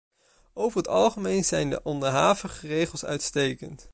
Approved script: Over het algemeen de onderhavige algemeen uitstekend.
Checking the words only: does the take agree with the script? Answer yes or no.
no